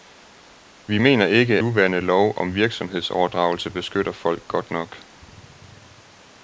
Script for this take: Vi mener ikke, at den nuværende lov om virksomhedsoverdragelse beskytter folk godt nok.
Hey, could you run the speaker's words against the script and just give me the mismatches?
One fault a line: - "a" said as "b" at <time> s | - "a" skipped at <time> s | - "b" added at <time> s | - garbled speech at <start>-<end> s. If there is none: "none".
- "at den" skipped at 1.6 s